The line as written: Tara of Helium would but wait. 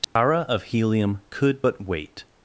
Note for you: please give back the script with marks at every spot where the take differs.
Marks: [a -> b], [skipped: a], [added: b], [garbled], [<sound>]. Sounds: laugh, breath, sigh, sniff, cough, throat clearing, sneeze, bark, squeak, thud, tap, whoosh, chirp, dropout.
Tara [dropout] of Helium [would -> could] but wait.